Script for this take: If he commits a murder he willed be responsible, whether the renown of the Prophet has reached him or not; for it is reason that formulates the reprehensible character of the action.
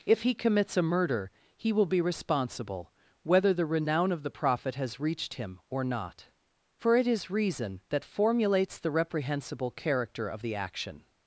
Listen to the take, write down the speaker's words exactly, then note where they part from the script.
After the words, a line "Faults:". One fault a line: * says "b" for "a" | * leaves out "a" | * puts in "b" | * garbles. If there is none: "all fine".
If he commits a murder he will be responsible, whether the renown of the Prophet has reached him or not; for it is reason that formulates the reprehensible character of the action.
Faults:
* says "will" for "willed"